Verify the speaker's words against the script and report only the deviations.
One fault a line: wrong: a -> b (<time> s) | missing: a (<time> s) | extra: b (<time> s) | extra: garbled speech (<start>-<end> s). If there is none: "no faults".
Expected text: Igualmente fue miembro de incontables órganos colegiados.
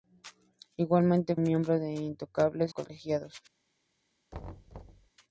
missing: fue (1.4 s)
missing: órganos (2.7 s)